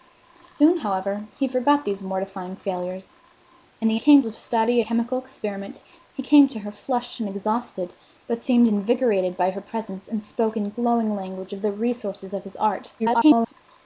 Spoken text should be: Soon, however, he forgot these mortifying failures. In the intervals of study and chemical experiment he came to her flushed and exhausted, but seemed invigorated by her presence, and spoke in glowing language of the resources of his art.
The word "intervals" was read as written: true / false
false